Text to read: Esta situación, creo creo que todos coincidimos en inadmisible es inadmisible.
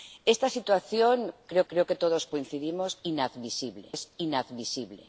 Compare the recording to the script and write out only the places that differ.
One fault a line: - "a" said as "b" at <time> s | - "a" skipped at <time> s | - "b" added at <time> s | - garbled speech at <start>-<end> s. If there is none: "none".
none